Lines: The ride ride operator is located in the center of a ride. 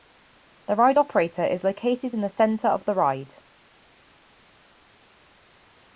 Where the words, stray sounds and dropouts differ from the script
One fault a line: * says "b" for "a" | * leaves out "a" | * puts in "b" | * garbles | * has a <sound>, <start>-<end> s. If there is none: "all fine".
* leaves out "ride"
* says "the" for "a"